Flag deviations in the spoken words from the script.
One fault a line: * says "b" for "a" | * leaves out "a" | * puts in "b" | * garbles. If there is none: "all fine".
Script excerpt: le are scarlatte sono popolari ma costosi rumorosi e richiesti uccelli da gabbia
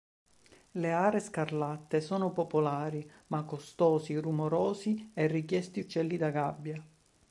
all fine